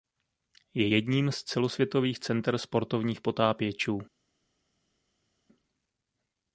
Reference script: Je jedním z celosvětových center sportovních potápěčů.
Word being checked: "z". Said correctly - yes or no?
yes